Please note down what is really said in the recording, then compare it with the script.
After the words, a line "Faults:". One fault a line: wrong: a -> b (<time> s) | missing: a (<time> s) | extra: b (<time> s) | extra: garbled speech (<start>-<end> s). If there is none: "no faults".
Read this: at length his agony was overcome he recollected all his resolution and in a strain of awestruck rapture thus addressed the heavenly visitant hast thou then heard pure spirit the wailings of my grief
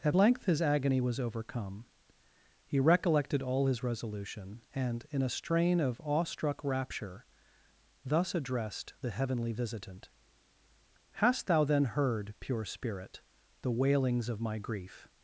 at length his agony was overcome he recollected all his resolution and in a strain of awestruck rapture thus addressed the heavenly visitant hast thou then heard pure spirit the wailings of my grief
Faults:
no faults